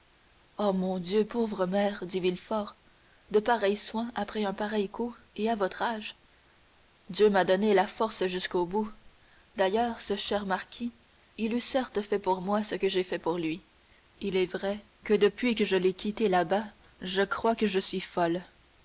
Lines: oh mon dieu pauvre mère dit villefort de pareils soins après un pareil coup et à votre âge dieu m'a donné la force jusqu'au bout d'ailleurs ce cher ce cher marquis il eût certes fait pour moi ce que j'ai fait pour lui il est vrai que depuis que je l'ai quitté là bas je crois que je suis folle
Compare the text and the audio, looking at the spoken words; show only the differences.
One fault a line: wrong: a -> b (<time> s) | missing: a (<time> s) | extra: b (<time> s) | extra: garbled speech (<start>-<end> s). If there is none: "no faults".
missing: ce cher (10.5 s)